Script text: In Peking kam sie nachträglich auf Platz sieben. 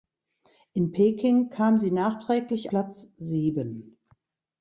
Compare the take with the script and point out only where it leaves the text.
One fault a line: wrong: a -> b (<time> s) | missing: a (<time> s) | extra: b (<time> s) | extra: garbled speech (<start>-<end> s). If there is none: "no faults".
missing: auf (2.7 s)